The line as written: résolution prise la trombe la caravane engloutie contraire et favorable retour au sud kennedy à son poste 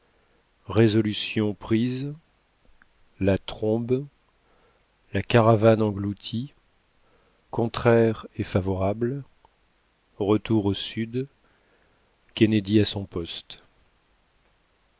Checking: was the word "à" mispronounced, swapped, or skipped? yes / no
no